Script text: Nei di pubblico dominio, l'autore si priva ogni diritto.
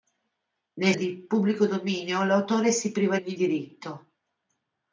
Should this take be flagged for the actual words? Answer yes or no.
no